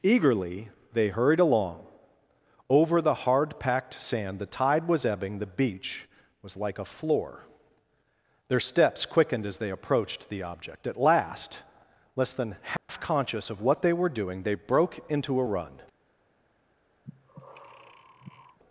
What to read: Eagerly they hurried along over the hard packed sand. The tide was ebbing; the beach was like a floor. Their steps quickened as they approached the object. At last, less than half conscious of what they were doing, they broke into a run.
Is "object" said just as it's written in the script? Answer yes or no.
yes